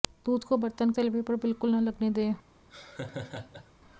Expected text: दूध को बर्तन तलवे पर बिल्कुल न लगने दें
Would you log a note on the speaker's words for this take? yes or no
no